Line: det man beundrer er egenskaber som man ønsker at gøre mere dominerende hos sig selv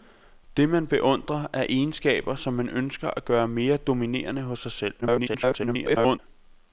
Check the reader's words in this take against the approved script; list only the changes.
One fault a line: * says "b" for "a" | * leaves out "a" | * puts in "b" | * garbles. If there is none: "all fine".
* garbles